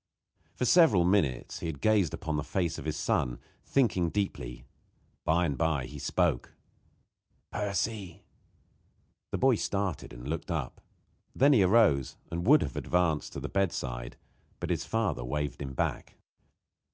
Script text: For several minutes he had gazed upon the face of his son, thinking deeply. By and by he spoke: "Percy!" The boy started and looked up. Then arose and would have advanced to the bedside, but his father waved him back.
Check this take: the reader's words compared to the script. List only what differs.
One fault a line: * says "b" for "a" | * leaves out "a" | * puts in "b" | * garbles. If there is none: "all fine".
* puts in "he"